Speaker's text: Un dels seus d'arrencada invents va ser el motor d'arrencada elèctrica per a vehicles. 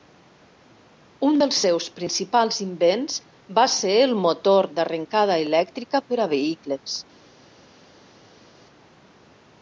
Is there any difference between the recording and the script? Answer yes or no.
yes